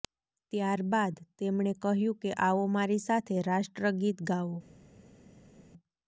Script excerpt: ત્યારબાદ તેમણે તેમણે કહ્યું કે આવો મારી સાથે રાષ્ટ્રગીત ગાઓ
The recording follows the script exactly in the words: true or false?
false